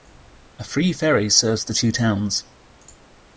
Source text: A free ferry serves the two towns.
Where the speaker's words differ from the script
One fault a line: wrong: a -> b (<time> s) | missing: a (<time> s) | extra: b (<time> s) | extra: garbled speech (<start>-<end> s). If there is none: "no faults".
no faults